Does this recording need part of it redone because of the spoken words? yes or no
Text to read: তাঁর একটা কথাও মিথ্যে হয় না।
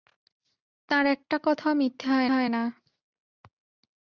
yes